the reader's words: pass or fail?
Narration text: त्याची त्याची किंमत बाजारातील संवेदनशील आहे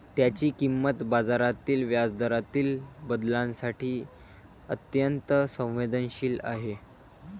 fail